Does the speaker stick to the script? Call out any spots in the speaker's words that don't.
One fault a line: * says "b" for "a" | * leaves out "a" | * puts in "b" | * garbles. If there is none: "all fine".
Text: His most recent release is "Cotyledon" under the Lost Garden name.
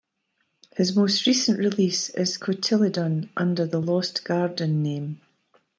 all fine